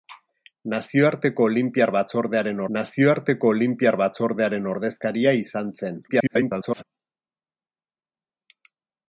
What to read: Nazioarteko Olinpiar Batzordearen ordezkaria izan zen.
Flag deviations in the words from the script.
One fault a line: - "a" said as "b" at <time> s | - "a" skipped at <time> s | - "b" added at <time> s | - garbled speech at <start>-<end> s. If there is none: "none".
- "nazioarteko Olinpiar Batzordearen" added at 2.8 s
- garbled speech at 6.1-6.8 s